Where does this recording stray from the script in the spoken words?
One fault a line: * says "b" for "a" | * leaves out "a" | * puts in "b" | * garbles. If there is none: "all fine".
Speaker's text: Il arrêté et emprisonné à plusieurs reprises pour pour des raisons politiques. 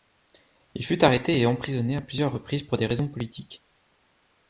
* puts in "fut"
* leaves out "pour"